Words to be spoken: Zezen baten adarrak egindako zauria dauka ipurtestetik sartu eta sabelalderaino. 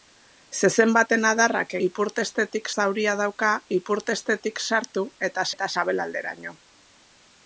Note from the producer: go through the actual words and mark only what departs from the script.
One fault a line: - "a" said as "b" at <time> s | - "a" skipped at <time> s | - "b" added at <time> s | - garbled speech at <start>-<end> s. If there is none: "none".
- "egindako" said as "ipurtestetik" at 1.9 s
- "eta" added at 5.6 s